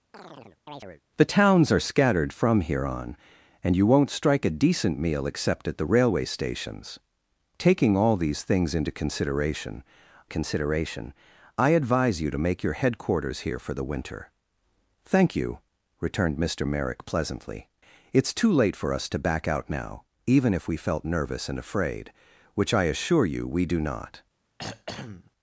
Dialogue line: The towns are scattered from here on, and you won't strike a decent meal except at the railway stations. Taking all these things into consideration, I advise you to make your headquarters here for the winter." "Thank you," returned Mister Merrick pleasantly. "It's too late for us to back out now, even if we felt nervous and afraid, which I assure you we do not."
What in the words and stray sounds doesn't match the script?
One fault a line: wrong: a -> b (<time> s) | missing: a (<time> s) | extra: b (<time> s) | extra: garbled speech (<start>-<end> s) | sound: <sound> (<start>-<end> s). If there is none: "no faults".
sound: chirp (0.1-1.0 s)
extra: consideration (10.2 s)
sound: throat clearing (24.6-25.3 s)